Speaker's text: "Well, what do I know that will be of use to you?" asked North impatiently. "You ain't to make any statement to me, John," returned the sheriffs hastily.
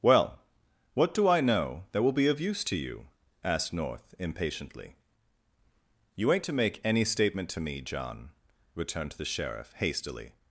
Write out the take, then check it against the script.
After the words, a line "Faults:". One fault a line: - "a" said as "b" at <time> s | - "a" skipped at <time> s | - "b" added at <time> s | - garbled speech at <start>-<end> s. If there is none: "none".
"Well, what do I know that will be of use to you?" asked North impatiently. "You ain't to make any statement to me, John," returned the sheriff hastily.
Faults:
- "sheriffs" said as "sheriff" at 9.2 s